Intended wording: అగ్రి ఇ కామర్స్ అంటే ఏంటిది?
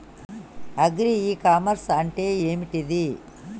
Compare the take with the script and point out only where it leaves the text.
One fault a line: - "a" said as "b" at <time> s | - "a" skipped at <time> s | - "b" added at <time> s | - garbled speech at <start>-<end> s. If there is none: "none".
none